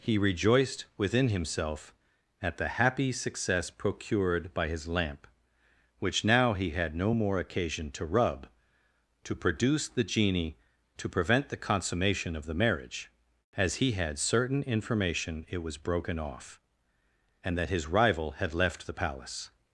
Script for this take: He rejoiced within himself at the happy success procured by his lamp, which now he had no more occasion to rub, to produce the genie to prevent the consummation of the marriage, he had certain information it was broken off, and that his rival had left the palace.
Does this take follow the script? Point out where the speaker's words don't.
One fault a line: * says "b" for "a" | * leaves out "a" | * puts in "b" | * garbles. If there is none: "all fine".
* puts in "as"